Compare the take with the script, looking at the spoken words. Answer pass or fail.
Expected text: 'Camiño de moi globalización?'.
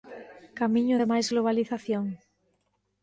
fail